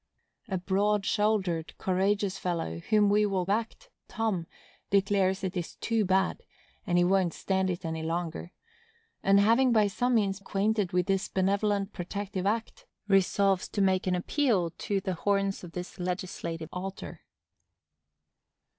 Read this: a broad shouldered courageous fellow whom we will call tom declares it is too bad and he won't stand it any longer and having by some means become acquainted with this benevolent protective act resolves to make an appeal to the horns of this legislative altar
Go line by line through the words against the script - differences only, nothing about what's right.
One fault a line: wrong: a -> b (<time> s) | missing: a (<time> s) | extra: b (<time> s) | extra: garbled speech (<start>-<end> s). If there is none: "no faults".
wrong: call -> act (3.5 s)
missing: become (10.4 s)